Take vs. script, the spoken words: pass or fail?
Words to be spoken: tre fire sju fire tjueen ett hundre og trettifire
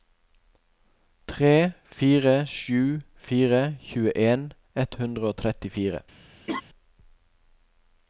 pass